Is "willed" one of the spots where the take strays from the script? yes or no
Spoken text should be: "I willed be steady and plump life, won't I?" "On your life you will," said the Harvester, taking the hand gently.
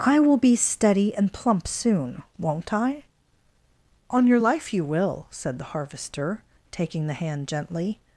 yes